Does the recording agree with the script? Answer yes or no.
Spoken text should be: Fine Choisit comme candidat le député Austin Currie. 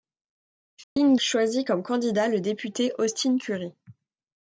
yes